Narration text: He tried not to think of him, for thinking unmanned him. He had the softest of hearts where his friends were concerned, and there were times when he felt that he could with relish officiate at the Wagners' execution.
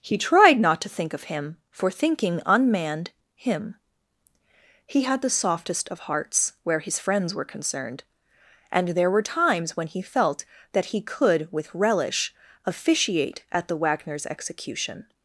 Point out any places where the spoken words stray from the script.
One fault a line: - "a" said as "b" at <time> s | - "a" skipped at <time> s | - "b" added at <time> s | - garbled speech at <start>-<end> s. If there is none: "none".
none